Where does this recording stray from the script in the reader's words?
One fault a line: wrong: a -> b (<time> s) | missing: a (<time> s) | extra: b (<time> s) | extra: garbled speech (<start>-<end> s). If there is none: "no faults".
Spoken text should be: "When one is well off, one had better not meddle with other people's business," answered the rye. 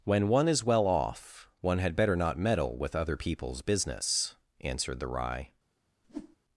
no faults